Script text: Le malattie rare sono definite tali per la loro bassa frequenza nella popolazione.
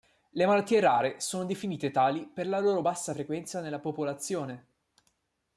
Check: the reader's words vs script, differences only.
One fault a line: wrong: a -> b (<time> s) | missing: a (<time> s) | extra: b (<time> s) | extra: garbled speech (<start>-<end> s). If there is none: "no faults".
no faults